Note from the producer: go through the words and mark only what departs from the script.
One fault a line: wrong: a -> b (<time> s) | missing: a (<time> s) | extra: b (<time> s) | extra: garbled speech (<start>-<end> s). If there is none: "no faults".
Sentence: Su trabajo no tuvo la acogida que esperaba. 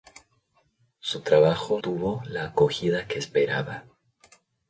missing: no (1.8 s)